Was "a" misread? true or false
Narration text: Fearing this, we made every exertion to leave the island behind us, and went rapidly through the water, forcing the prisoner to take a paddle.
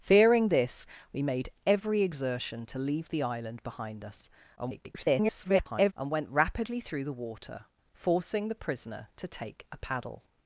false